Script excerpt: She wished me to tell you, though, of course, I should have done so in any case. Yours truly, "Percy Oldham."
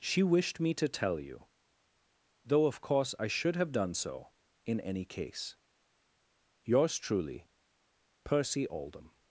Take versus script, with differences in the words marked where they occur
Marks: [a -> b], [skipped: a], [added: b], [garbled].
She wished me to tell you, though, of course, I should have done so in any case. Yours truly, "Percy Oldham."